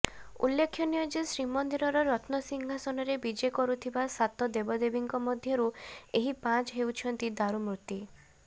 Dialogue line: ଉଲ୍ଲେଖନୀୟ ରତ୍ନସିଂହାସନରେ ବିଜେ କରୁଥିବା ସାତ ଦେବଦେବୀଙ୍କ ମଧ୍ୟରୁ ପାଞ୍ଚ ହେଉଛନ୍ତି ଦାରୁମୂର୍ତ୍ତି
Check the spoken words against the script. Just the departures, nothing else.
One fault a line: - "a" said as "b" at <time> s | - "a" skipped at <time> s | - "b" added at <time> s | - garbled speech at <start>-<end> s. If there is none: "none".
- "ଯେ ଶ୍ରୀମନ୍ଦିରର" added at 1.1 s
- "ଏହି" added at 6.2 s